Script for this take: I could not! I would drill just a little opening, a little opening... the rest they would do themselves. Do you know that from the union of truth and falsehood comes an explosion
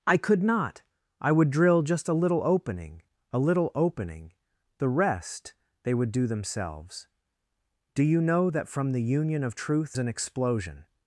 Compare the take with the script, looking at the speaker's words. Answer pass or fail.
fail